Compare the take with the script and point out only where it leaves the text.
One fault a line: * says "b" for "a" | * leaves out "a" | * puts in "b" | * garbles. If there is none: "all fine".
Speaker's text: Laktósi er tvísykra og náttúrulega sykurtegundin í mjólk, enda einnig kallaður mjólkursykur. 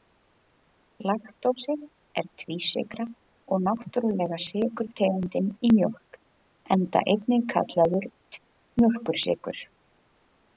all fine